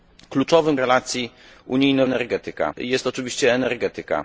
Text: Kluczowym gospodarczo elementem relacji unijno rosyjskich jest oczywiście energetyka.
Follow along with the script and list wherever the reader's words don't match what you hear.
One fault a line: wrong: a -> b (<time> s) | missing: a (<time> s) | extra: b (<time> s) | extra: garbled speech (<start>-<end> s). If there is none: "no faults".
missing: gospodarczo elementem (0.8 s)
wrong: rosyjskich -> energetyka (2.0 s)